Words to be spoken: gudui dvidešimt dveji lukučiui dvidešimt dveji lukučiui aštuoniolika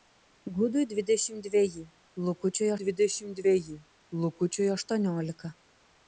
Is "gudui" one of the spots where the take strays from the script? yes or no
no